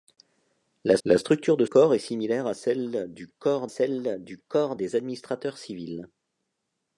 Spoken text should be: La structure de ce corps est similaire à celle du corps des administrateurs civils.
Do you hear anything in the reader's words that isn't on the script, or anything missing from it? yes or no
yes